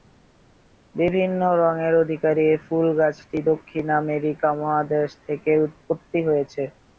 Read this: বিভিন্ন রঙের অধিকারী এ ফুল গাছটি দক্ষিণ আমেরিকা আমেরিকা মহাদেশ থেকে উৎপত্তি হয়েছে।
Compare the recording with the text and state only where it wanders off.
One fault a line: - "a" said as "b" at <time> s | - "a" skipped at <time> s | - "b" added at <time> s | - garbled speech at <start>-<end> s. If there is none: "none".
- "আমেরিকা" skipped at 4.5 s